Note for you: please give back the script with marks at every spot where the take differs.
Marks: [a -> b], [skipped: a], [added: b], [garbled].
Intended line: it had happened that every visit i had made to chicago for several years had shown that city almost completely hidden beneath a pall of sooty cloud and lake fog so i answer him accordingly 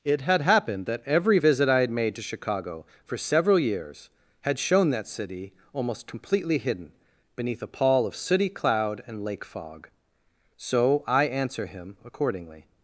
it had happened that every visit i had made to chicago for several years had shown that city almost completely hidden beneath a pall of sooty cloud and lake fog so i answer him accordingly